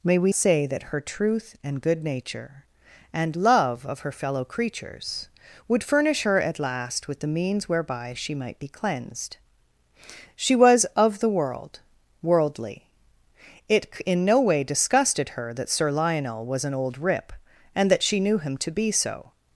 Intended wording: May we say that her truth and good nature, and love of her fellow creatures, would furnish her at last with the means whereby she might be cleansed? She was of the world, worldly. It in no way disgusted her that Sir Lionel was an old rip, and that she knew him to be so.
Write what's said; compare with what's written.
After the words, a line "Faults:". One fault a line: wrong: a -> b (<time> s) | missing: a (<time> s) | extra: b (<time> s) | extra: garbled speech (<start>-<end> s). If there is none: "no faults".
May we say that her truth and good nature, and love of her fellow creatures, would furnish her at last with the means whereby she might be cleansed? She was of the world, worldly. It in no way disgusted her that Sir Lionel was an old rip, and that she knew him to be so.
Faults:
no faults